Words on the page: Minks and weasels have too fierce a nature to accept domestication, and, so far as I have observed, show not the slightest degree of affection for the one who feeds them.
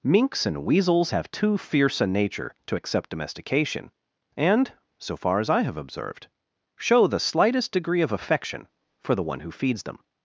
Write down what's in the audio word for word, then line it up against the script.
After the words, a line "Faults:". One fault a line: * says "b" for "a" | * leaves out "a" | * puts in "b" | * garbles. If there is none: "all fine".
Minks and weasels have too fierce a nature to accept domestication, and, so far as I have observed, show the slightest degree of affection for the one who feeds them.
Faults:
* leaves out "not"